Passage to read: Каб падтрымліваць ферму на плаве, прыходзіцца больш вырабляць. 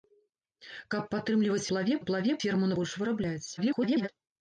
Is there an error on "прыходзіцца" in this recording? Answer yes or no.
yes